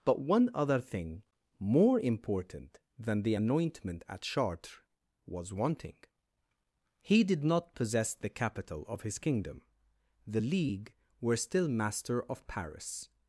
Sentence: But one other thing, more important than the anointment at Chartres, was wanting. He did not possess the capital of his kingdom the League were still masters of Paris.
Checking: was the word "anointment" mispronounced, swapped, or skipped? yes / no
no